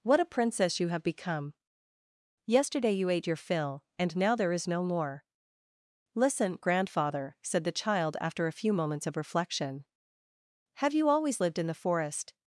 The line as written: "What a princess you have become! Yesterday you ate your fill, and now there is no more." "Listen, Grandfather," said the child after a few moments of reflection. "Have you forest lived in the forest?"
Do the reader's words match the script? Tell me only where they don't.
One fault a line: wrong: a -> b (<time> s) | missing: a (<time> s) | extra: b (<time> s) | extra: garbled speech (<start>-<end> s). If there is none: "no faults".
wrong: forest -> always (11.1 s)